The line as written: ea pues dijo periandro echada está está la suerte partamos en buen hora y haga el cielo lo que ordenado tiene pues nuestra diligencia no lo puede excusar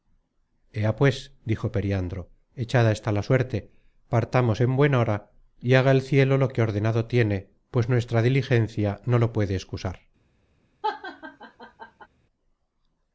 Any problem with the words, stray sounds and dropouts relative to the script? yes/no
yes